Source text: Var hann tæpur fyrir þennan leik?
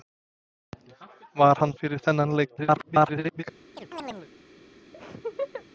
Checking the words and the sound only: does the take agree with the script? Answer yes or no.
no